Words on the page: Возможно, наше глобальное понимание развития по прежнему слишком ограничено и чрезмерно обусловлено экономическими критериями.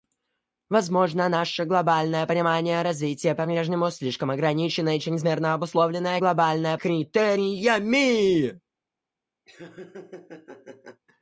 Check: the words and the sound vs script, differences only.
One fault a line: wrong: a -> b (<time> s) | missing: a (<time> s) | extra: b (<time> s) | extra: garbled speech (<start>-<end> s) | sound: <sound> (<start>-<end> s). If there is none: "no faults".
wrong: экономическими -> глобальное (6.2 s)
sound: laugh (9.5-11.0 s)